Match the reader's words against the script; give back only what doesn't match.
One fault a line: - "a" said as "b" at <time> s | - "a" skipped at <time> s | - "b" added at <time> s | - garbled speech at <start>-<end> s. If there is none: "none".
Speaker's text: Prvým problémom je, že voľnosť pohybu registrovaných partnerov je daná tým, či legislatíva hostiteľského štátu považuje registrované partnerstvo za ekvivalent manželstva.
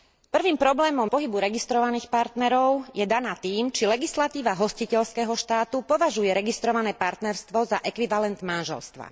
- "je že voľnosť" skipped at 1.1 s